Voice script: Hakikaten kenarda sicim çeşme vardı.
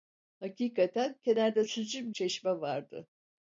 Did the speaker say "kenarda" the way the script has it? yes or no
yes